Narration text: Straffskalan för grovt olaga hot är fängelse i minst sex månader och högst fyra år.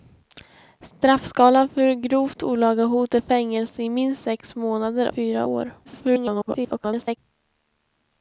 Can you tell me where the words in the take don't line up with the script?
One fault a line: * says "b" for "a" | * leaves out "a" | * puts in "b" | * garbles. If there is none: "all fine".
* leaves out "och högst"
* garbles